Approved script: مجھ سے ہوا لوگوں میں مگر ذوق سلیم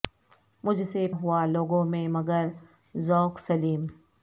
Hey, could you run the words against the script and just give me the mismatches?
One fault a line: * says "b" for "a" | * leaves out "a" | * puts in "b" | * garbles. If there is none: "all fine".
all fine